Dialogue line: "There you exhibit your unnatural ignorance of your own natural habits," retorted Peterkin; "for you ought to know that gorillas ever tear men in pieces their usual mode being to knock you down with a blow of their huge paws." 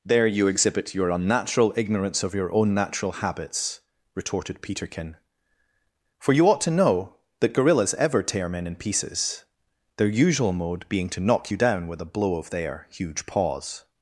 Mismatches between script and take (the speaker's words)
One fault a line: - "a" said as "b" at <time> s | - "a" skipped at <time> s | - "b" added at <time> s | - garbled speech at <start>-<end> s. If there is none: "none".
none